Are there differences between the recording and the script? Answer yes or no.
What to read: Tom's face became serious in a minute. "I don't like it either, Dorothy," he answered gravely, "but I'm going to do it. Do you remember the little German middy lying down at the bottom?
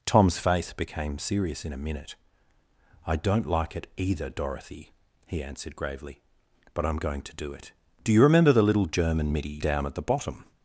yes